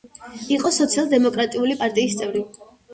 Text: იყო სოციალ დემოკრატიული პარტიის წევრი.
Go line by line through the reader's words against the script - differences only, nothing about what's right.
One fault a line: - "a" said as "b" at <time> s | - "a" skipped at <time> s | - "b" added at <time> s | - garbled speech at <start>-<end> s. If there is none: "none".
none